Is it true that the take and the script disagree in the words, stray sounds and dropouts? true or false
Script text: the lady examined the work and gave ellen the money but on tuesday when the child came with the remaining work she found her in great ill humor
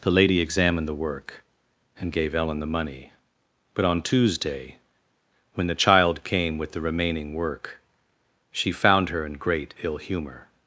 false